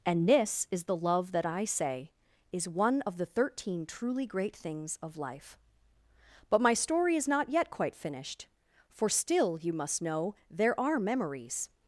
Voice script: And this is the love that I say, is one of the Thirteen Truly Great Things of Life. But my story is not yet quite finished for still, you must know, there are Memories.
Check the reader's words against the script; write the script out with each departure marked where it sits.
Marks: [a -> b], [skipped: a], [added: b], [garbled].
And this is the love that I say, is one of the Thirteen Truly Great Things of Life. But my story is not yet quite finished for still, you must know, there are Memories.